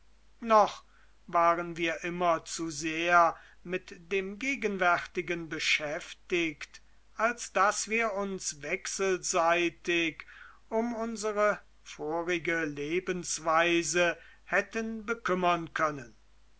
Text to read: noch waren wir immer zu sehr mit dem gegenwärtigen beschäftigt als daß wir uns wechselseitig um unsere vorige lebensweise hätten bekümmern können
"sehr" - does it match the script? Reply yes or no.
yes